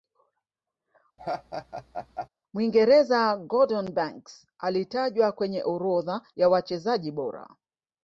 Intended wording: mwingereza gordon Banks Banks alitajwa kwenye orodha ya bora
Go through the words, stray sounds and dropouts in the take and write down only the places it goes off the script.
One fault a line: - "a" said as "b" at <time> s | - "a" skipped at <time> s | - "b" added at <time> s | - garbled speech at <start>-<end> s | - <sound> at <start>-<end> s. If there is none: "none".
- laugh at 1.2-2.3 s
- "Banks" skipped at 4.5 s
- "wachezaji" added at 6.5 s